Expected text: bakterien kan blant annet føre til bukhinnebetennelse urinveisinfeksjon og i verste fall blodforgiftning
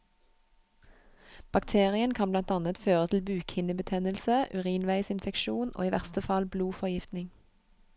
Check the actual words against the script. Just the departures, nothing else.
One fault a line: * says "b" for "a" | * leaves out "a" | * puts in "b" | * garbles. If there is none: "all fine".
all fine